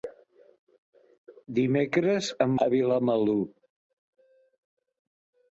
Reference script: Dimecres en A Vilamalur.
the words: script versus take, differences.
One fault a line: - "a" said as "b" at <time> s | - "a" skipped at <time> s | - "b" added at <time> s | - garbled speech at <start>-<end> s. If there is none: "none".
none